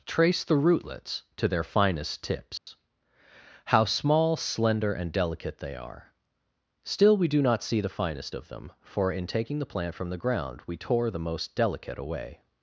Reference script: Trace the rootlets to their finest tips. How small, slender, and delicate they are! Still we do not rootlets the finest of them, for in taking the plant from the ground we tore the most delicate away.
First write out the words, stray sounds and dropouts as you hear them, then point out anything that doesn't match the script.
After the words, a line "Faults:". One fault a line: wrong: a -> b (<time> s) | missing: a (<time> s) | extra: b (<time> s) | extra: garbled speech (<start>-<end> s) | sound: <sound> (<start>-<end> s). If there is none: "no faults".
Trace the rootlets to their finest tips. How small, slender, and delicate they are! Still we do not see the finest of them, for in taking the plant from the ground we tore the most delicate away.
Faults:
sound: dropout (2.6-2.7 s)
wrong: rootlets -> see (7.6 s)